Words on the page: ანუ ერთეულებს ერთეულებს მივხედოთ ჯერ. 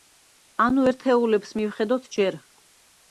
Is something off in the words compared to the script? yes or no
yes